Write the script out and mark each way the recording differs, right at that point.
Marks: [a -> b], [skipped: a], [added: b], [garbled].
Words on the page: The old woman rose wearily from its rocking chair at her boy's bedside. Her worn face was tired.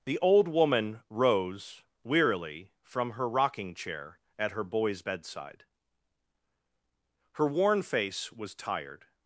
The old woman rose wearily from [its -> her] rocking chair at her boy's bedside. Her worn face was tired.